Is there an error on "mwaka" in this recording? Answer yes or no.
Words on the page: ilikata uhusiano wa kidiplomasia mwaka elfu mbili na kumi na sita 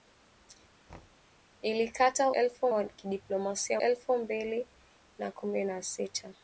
yes